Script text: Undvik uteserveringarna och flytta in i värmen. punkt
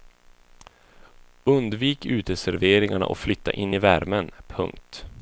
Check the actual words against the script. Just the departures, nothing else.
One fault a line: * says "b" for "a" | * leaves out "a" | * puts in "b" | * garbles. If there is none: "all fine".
all fine